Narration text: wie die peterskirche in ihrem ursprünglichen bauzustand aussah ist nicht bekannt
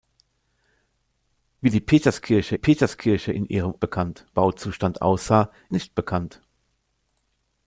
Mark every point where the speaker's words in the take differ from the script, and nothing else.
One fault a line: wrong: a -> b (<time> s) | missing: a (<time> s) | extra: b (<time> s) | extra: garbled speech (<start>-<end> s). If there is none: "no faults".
extra: peterskirche (2.5 s)
wrong: ursprünglichen -> bekannt (3.8 s)
missing: ist (5.5 s)